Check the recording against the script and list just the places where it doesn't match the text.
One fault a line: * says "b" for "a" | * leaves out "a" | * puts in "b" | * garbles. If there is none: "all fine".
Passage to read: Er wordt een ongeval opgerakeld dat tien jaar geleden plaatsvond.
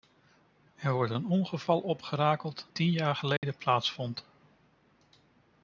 * leaves out "dat"